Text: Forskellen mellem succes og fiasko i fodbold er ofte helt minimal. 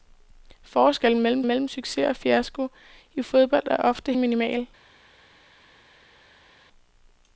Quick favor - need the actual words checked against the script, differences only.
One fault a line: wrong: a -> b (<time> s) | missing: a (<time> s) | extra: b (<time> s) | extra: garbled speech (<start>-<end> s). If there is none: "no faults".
extra: mellem (1.5 s)
missing: helt (4.1 s)